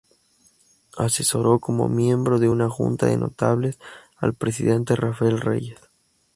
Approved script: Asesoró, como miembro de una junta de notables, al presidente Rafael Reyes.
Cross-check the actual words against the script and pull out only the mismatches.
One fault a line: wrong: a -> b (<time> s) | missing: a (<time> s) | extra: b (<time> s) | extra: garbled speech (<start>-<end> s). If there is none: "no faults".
no faults